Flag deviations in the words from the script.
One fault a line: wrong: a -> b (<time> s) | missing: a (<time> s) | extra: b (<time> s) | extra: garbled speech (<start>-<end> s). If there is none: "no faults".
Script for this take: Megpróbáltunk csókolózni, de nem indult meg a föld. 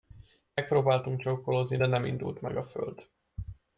no faults